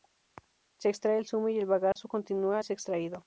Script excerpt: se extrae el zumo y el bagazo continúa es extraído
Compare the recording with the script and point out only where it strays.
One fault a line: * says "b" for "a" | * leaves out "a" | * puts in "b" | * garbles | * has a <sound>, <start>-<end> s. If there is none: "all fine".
* has a dropout, 1.9-2.0 s